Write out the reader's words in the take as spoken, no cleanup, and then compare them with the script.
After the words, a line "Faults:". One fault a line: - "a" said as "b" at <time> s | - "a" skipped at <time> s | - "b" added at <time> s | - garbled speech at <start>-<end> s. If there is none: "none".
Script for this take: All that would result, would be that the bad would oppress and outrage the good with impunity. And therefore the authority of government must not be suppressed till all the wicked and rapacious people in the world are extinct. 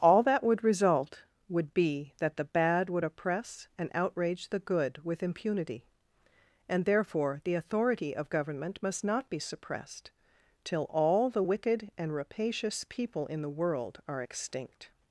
All that would result, would be that the bad would oppress and outrage the good with impunity. And therefore the authority of government must not be suppressed till all the wicked and rapacious people in the world are extinct.
Faults:
none